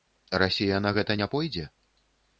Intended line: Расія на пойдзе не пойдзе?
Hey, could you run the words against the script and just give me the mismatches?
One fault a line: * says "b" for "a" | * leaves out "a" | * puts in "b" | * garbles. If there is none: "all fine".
* says "гэта" for "пойдзе"